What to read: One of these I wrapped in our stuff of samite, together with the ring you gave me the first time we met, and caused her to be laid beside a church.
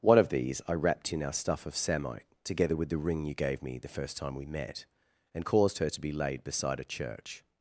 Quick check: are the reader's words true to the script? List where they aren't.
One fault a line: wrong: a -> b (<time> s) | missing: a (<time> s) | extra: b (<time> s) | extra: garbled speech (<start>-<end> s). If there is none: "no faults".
no faults